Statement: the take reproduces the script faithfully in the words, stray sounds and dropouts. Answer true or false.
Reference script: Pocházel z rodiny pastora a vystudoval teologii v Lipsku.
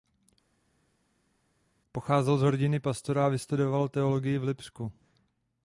true